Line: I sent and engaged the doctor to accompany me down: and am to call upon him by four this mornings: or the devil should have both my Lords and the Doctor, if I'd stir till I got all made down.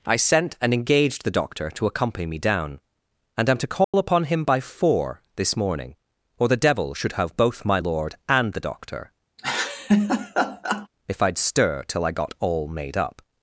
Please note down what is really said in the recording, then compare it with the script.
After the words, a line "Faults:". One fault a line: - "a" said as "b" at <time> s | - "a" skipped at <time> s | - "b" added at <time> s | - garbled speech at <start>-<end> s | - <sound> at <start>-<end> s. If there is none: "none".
I sent and engaged the doctor to accompany me down: and am to call upon him by four this morning: or the devil should have both my Lord and the Doctor, if I'd stir till I got all made up.
Faults:
- dropout at 3.8-3.9 s
- "mornings" said as "morning" at 5.5 s
- "Lords" said as "Lord" at 7.8 s
- laugh at 9.4-10.9 s
- "down" said as "up" at 13.0 s